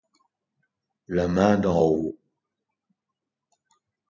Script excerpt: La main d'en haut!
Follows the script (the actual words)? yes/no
yes